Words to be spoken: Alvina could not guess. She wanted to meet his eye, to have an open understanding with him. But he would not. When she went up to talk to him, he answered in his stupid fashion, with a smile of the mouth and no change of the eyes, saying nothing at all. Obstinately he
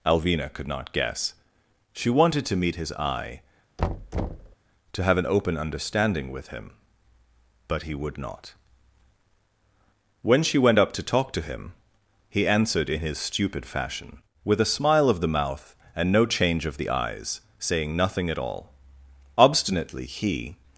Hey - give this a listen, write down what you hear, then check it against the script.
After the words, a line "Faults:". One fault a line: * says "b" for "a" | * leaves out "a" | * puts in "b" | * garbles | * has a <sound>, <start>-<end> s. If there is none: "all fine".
Alvina could not guess. She wanted to meet his eye, to have an open understanding with him. But he would not. When she went up to talk to him, he answered in his stupid fashion, with a smile of the mouth and no change of the eyes, saying nothing at all. Obstinately he
Faults:
* has a thud, 3.8-4.6 s